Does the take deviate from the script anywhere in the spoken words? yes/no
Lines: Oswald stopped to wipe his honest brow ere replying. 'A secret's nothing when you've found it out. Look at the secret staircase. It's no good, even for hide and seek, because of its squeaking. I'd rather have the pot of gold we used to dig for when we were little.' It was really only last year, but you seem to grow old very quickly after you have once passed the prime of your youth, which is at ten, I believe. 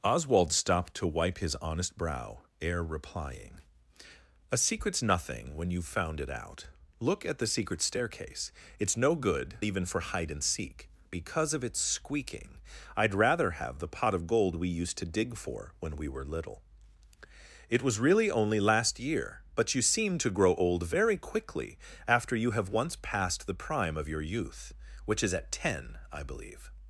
no